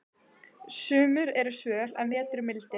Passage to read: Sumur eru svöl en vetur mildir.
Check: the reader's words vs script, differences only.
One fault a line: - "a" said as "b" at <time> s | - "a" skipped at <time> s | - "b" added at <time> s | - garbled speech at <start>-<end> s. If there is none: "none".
none